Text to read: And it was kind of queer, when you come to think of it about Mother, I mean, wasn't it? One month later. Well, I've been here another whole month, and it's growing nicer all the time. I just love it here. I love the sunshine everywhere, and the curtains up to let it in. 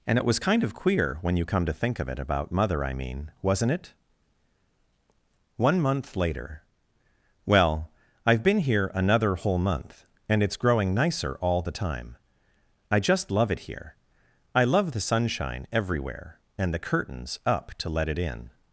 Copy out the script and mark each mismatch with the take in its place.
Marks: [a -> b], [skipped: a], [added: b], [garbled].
And it was kind of queer, when you come to think of it about Mother, I mean, wasn't it? One month later. Well, I've been here another whole month, and it's growing nicer all the time. I just love it here. I love the sunshine everywhere, and the curtains up to let it in.